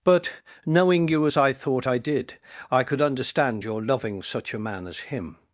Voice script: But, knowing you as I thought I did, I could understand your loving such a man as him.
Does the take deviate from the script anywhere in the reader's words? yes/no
no